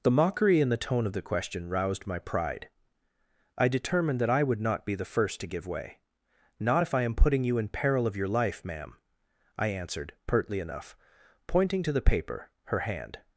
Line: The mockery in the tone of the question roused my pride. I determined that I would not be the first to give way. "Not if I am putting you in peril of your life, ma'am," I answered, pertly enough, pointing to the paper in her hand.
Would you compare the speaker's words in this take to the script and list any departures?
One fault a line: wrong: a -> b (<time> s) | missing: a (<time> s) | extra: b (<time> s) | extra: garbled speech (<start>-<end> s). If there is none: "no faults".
missing: in (12.5 s)